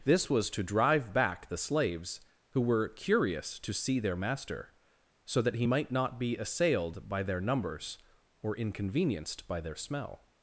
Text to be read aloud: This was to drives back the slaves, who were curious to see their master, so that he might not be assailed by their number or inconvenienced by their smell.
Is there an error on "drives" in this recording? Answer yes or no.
yes